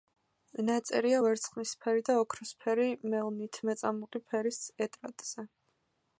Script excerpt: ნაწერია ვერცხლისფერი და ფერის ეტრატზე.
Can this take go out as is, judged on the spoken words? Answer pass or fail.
fail